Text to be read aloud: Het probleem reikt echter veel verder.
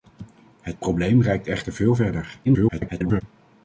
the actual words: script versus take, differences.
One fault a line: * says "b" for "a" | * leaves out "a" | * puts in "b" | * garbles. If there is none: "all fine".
* garbles